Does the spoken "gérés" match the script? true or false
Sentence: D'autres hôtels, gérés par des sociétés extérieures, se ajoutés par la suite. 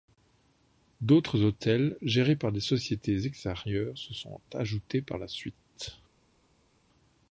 true